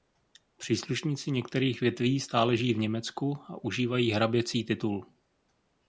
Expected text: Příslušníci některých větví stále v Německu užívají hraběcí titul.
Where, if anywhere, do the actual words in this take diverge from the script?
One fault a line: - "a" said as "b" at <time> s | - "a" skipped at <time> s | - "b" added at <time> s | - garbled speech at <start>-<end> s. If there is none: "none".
- "žijí" added at 2.6 s
- "a" added at 3.5 s